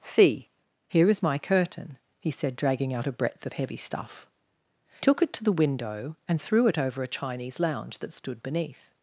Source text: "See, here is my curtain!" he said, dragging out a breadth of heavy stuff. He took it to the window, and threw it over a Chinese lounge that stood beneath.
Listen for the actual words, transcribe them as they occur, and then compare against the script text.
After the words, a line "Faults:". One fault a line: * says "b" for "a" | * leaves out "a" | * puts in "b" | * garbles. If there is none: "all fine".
"See, here is my curtain!" he said, dragging out a breadth of heavy stuff. Took it to the window, and threw it over a Chinese lounge that stood beneath.
Faults:
* leaves out "He"